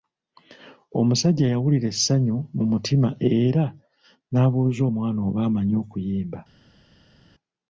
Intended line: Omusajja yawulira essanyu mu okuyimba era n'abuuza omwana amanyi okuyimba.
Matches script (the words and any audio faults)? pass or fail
fail